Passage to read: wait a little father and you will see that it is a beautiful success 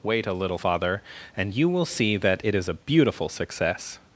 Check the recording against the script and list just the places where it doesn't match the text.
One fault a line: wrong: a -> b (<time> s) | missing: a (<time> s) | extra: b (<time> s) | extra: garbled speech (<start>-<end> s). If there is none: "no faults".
no faults